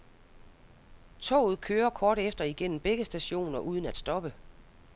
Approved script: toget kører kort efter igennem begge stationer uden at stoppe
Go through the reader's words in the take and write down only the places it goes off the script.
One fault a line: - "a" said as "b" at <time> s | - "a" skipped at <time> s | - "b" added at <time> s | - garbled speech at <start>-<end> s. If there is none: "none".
none